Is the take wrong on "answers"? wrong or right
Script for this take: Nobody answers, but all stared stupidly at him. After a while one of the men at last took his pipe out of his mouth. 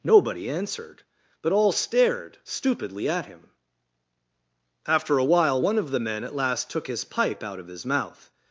wrong